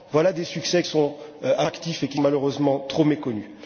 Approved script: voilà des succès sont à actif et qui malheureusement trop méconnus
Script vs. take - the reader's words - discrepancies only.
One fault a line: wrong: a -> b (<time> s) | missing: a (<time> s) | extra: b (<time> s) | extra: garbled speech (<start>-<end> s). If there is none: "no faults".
no faults